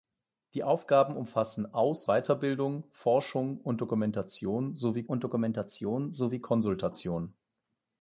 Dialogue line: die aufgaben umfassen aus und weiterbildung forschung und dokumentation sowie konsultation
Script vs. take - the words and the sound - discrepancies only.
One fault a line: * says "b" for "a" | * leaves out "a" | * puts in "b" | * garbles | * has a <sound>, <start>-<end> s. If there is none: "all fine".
* puts in "weiterbildung forschung"
* says "dokumentation sowie" for "weiterbildung forschung"